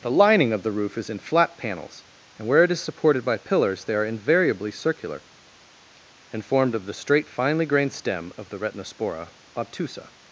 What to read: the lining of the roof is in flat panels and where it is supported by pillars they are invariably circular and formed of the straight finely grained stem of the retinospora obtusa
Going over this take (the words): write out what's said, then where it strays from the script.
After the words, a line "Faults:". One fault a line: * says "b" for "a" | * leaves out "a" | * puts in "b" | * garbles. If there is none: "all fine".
the lining of the roof is in flat panels and where it is supported by pillars they are invariably circular and formed of the straight finely grained stem of the retinospora obtusa
Faults:
all fine